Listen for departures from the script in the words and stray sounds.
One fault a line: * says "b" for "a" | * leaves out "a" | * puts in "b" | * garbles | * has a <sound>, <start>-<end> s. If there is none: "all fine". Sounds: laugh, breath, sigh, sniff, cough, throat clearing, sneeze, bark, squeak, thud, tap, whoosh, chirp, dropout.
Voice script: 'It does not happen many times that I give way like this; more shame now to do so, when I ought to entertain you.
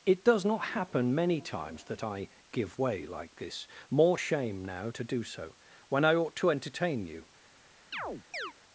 * has a chirp, 7.9-8.5 s